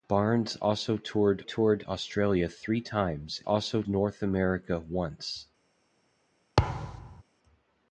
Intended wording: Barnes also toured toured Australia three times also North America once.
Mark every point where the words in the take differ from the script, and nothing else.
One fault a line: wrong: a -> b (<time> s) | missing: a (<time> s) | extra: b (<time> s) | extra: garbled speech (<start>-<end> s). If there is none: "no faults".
no faults